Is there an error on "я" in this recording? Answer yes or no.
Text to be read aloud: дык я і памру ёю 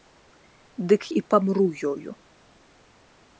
yes